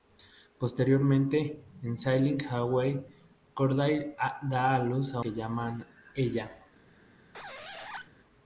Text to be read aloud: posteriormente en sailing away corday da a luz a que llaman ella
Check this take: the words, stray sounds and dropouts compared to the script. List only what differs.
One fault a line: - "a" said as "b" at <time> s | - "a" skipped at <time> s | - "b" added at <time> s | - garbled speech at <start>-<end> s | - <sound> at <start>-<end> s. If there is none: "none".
- squeak at 7.3-8.1 s